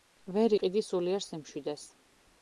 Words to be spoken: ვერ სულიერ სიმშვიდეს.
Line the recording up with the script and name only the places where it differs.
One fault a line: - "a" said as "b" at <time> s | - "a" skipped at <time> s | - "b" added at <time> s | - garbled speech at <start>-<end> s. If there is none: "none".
- "იყიდი" added at 0.5 s